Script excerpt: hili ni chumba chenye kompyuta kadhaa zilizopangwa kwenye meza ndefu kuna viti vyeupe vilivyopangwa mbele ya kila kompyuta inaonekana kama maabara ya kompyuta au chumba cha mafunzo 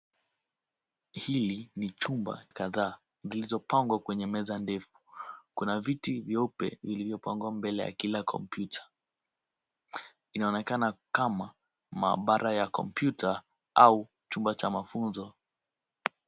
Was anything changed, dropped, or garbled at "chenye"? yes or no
yes